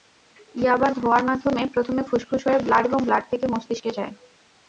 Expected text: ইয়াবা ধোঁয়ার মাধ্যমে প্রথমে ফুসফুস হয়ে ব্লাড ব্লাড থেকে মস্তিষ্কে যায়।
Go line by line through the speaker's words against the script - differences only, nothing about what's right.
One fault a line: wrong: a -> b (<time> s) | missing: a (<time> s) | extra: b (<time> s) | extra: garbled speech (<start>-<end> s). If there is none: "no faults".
extra: এবং (2.8 s)